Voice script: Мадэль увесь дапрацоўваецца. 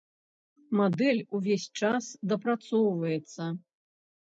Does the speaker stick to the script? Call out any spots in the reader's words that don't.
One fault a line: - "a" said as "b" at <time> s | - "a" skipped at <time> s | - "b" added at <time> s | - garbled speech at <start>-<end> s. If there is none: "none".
- "час" added at 1.8 s